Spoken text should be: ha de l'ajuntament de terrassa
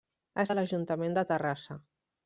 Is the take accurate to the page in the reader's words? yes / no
yes